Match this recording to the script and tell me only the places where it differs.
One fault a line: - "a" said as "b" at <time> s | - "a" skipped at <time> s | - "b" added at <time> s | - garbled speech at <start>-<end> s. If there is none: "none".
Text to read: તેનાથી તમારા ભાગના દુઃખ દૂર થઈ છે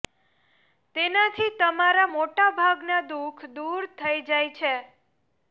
- "મોટા" added at 2.1 s
- "જાય" added at 4.3 s